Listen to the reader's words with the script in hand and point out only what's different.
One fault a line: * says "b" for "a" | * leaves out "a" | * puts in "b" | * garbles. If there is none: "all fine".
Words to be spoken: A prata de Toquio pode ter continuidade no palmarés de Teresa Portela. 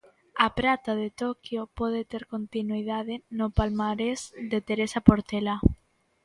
all fine